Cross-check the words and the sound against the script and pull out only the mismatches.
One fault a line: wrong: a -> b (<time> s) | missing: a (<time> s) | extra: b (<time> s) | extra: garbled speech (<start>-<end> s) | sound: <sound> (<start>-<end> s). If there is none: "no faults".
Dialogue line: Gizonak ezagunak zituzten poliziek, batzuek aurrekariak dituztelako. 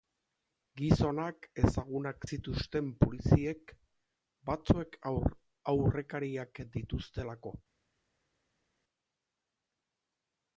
no faults